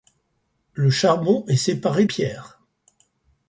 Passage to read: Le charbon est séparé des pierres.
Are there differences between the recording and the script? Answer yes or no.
yes